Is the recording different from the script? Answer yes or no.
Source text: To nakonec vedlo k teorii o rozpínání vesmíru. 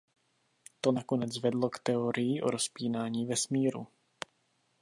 no